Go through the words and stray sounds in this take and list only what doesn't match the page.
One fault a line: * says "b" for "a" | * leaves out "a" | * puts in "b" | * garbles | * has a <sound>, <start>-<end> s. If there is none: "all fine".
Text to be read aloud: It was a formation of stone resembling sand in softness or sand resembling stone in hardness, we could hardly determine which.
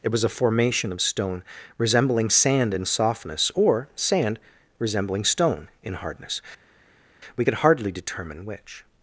all fine